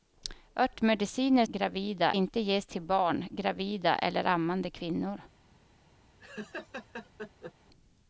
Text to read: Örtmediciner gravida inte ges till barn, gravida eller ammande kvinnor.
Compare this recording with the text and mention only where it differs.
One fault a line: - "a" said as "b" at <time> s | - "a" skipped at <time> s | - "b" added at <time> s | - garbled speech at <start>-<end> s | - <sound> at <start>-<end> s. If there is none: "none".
- laugh at 6.2-7.5 s